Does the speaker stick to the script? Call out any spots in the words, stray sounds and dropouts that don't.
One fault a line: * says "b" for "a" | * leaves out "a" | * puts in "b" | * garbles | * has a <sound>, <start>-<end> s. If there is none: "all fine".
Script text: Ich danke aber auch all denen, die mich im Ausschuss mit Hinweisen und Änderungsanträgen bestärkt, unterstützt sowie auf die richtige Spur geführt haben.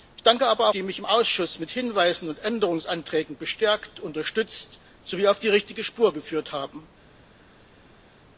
* leaves out "auch all denen"